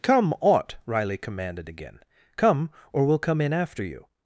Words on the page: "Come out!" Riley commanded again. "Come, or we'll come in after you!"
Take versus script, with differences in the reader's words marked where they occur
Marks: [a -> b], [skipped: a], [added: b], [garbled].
"Come [out!" -> ought] Riley commanded again. "Come, or we'll come in after you!"